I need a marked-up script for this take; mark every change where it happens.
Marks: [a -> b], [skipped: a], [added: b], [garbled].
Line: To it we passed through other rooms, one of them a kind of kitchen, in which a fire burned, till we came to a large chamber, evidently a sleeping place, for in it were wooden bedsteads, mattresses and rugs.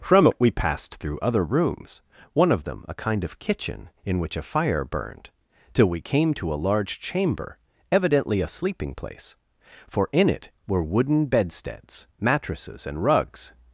[To -> From] it we passed through other rooms, one of them a kind of kitchen, in which a fire burned, till we came to a large chamber, evidently a sleeping place, for in it were wooden bedsteads, mattresses and rugs.